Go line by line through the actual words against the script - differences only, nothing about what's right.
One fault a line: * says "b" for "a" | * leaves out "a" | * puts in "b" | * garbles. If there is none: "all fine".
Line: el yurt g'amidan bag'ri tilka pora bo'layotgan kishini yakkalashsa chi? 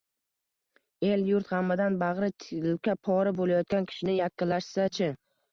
all fine